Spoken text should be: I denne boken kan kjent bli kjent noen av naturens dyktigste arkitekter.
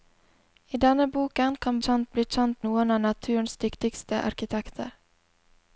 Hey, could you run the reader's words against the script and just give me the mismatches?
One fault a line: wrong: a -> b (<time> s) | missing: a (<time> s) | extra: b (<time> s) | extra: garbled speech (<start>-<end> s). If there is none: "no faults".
no faults